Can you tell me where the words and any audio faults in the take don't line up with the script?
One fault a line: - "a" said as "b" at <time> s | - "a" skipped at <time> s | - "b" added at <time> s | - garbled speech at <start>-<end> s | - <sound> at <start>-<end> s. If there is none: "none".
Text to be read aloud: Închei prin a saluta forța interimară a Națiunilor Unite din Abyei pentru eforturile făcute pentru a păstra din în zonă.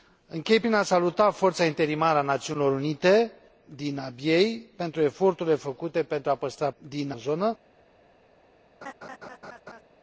- laugh at 8.8-9.8 s